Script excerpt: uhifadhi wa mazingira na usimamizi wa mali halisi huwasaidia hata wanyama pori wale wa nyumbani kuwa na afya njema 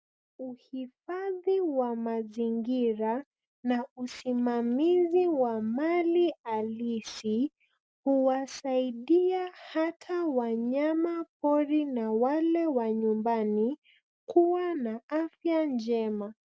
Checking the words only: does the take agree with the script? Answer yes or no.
no